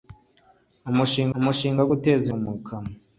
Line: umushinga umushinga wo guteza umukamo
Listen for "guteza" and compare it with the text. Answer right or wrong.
right